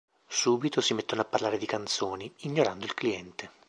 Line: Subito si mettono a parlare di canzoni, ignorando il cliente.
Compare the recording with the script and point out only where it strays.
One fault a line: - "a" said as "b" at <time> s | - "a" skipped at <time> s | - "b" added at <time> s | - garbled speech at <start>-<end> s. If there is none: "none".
none